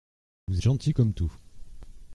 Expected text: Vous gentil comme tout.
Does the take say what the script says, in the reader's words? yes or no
yes